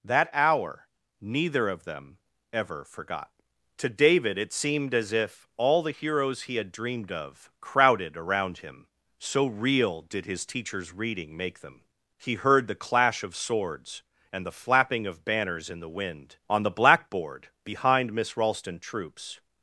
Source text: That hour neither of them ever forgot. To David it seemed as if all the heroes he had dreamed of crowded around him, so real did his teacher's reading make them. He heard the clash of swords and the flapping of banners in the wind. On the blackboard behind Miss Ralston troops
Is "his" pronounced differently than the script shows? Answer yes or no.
no